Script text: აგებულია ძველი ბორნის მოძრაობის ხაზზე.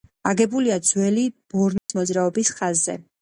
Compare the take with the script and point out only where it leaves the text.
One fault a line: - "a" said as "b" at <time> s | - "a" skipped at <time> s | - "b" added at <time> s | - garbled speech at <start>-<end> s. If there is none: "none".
none